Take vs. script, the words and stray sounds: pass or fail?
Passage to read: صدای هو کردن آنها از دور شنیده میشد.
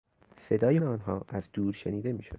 fail